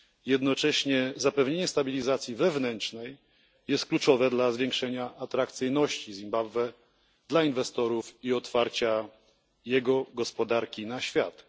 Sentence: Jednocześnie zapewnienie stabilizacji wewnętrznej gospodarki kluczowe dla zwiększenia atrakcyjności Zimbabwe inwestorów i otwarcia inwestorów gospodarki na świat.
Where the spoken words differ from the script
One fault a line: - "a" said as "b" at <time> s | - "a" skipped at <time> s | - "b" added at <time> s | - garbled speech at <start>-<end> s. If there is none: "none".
- "gospodarki" said as "jest" at 3.7 s
- "dla" added at 7.3 s
- "inwestorów" said as "jego" at 9.7 s